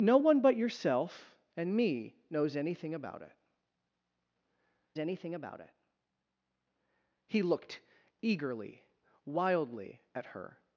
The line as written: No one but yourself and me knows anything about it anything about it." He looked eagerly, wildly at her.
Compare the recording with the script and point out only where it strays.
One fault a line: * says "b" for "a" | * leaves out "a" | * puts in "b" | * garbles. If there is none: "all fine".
all fine